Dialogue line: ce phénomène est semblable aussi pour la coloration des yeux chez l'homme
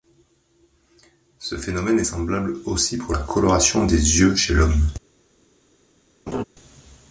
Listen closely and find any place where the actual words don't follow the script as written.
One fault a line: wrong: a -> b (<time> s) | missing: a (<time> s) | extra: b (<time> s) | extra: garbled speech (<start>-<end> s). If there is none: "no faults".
no faults